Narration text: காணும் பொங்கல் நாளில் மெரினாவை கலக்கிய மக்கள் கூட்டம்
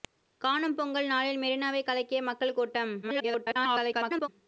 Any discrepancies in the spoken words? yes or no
yes